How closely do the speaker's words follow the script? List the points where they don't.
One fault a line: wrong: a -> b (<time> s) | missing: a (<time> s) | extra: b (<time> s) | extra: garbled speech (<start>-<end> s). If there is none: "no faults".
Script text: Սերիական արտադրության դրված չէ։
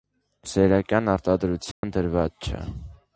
no faults